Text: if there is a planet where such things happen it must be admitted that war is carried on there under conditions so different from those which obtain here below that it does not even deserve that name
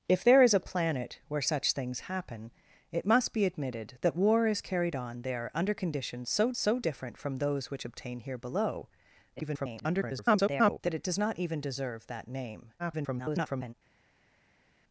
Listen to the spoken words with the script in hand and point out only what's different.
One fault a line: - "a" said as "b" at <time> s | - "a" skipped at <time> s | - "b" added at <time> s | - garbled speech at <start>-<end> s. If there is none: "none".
- "so" added at 6.6 s
- garbled speech at 9.4-10.8 s
- garbled speech at 12.8-13.7 s